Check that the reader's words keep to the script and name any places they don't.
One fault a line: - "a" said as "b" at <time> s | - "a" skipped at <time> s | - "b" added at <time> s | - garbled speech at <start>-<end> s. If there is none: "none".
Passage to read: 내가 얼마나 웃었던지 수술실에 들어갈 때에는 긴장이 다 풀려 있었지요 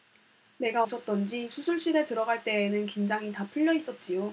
- "얼마나" skipped at 0.8 s